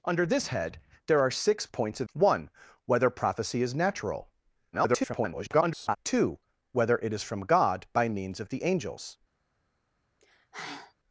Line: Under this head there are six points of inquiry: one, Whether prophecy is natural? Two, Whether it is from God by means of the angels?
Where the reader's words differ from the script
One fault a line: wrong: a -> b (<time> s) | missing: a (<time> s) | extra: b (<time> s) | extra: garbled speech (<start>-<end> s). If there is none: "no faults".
missing: inquiry (2.1 s)
extra: garbled speech (4.7-6.0 s)